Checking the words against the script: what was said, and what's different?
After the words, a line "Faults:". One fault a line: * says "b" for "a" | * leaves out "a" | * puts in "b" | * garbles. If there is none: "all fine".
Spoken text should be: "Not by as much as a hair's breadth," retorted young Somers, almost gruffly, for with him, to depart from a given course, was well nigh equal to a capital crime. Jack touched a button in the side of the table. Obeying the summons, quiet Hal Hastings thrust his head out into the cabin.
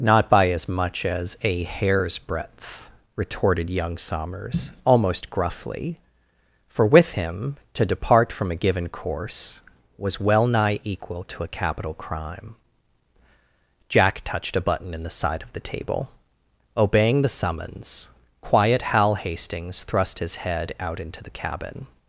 "Not by as much as a hair's breadth," retorted young Somers, almost gruffly, for with him, to depart from a given course, was well nigh equal to a capital crime. Jack touched a button in the side of the table. Obeying the summons, quiet Hal Hastings thrust his head out into the cabin.
Faults:
all fine